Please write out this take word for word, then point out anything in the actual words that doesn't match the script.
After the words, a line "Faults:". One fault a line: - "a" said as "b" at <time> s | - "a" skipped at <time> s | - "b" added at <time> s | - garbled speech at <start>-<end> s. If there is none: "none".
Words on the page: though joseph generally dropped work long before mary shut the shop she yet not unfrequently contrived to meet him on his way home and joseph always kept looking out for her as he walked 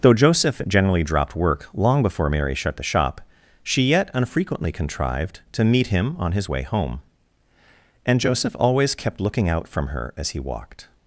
though joseph generally dropped work long before mary shut the shop she yet unfrequently contrived to meet him on his way home and joseph always kept looking out from her as he walked
Faults:
- "not" skipped at 4.1 s
- "for" said as "from" at 9.7 s